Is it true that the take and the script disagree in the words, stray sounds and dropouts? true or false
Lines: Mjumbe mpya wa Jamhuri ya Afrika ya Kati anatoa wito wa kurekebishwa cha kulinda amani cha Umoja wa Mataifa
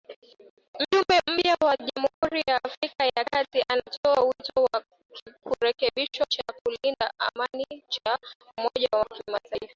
true